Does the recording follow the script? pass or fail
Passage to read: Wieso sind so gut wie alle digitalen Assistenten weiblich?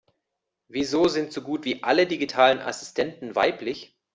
pass